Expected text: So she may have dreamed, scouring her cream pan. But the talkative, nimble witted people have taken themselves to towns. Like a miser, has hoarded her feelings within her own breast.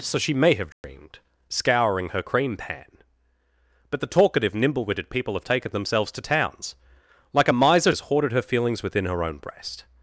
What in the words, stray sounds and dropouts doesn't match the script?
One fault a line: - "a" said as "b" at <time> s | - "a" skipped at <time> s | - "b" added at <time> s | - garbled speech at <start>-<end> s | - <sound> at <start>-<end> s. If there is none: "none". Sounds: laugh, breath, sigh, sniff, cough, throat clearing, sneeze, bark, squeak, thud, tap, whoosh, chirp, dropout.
- dropout at 0.7-0.8 s